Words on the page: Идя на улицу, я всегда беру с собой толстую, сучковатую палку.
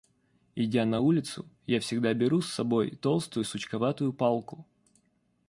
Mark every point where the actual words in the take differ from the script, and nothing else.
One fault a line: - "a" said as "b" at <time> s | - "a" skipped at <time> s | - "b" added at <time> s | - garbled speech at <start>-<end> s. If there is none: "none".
none